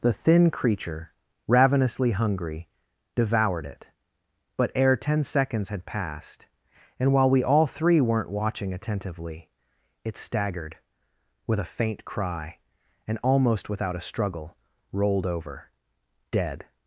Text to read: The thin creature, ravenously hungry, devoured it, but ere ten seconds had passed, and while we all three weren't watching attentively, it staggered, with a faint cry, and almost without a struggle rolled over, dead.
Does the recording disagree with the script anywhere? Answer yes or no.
no